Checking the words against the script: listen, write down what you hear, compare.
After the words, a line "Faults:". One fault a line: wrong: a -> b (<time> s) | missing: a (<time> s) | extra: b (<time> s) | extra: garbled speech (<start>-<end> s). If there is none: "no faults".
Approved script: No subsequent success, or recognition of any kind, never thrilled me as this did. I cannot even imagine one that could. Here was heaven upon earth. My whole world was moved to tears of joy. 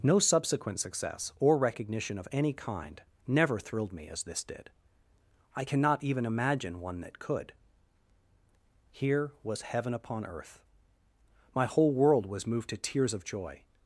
No subsequent success, or recognition of any kind, never thrilled me as this did. I cannot even imagine one that could. Here was heaven upon earth. My whole world was moved to tears of joy.
Faults:
no faults